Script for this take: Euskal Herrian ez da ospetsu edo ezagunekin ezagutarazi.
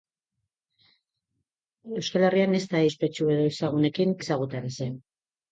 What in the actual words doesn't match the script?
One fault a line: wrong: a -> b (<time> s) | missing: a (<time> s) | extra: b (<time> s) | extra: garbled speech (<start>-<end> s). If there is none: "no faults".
no faults